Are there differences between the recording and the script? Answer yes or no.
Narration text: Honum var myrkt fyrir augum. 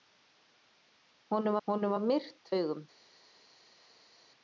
yes